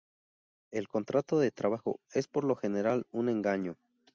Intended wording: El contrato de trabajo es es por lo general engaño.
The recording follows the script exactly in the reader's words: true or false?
false